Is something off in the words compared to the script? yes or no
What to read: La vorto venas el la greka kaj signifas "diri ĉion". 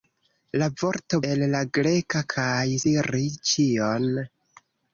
yes